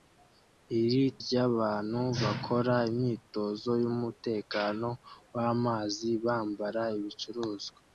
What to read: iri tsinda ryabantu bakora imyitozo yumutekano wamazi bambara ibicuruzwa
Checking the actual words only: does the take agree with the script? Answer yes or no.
no